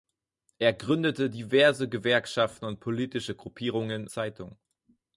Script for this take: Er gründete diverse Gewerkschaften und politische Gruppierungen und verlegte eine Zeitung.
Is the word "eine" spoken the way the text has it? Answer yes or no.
no